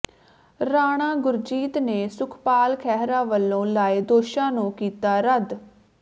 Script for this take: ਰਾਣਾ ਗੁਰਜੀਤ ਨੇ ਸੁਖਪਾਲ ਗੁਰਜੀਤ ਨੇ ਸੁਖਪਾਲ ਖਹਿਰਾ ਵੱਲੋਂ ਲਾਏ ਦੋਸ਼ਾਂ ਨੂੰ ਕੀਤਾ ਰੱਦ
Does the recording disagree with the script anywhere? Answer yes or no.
yes